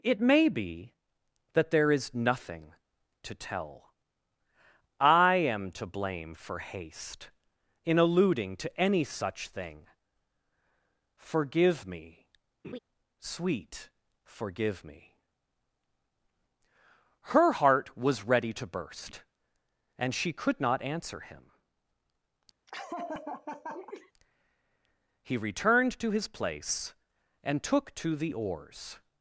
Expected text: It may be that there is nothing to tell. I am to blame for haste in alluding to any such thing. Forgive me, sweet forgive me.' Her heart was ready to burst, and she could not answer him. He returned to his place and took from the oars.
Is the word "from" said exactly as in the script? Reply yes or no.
no